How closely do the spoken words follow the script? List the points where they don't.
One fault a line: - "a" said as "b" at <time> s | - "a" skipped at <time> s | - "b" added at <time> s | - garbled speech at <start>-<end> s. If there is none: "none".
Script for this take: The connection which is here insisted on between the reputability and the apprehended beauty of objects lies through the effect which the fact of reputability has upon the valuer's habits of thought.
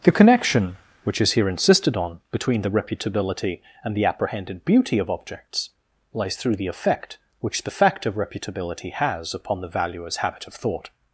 - "habits" said as "habit" at 10.2 s